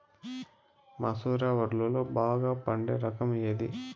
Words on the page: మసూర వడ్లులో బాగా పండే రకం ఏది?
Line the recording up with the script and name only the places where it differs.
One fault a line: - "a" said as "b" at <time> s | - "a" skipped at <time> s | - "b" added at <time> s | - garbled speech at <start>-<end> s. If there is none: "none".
none